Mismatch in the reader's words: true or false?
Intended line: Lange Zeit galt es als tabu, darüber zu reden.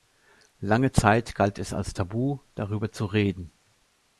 false